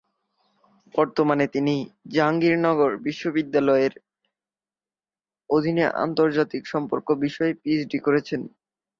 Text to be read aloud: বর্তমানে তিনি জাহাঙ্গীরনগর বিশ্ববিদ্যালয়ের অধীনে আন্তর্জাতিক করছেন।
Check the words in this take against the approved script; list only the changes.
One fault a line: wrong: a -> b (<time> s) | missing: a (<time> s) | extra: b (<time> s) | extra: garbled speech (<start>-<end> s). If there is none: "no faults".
extra: সম্পর্ক বিষয়ে পিএইচডি (6.7 s)